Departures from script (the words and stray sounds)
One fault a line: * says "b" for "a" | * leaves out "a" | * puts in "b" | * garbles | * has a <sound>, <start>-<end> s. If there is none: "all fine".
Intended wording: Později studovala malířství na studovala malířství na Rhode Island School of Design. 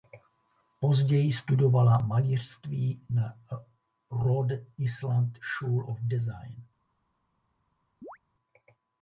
* leaves out "studovala malířství na"
* has a chirp, 8.0-8.2 s